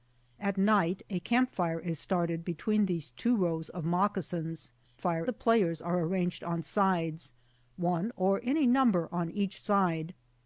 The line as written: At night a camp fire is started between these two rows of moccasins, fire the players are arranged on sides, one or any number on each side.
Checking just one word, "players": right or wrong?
right